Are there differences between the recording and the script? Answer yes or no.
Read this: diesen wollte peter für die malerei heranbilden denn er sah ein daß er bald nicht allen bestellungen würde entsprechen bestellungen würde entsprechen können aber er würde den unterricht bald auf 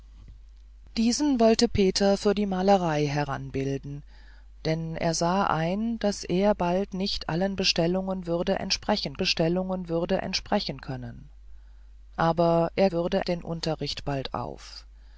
no